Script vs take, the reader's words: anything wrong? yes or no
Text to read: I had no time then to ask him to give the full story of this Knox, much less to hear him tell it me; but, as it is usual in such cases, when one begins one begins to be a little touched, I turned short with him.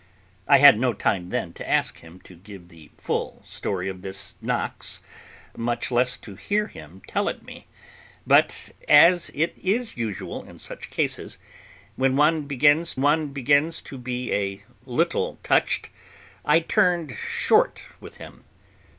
no